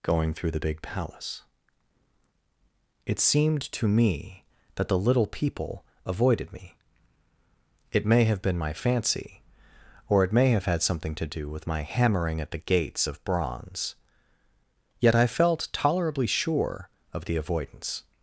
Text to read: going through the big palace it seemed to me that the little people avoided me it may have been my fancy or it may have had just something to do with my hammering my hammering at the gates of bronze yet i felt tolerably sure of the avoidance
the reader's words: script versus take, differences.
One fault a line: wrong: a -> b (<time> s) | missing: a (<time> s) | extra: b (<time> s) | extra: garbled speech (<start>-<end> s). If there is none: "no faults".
missing: just (10.8 s)
missing: my hammering (12.4 s)